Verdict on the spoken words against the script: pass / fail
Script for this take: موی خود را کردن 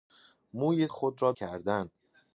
pass